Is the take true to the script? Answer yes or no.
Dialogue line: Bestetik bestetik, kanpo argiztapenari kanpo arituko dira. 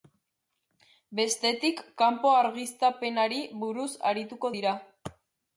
no